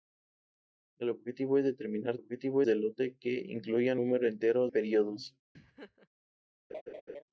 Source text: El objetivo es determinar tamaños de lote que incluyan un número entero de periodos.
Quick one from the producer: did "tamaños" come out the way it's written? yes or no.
no